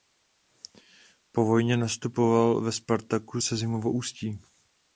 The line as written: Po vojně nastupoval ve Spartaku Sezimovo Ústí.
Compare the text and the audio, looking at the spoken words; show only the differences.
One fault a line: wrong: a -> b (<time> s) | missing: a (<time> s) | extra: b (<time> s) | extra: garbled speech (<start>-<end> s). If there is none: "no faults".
no faults